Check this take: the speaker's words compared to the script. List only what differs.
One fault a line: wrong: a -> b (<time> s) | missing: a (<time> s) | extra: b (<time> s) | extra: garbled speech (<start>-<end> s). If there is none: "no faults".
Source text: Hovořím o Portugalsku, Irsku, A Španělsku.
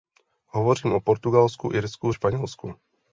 no faults